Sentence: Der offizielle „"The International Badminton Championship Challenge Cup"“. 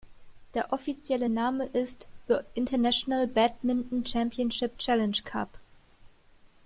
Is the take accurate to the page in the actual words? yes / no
no